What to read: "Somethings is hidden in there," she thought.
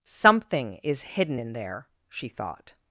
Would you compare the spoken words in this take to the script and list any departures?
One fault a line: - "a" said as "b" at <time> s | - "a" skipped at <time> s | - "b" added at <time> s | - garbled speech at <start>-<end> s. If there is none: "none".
- "Somethings" said as "Something" at 0.0 s